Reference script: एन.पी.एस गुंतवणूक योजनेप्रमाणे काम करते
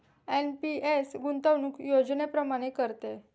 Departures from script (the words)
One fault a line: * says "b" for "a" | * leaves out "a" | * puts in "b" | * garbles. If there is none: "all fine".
* leaves out "काम"